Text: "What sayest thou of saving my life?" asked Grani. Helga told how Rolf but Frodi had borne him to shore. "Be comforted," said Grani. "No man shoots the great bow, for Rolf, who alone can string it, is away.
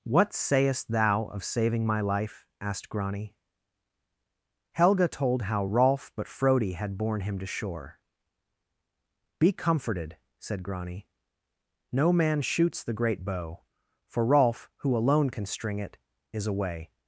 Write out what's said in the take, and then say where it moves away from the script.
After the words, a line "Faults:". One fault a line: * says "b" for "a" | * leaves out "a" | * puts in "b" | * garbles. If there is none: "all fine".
"What sayest thou of saving my life?" asked Grani. Helga told how Rolf but Frodi had borne him to shore. "Be comforted," said Grani. "No man shoots the great bow, for Rolf, who alone can string it, is away.
Faults:
all fine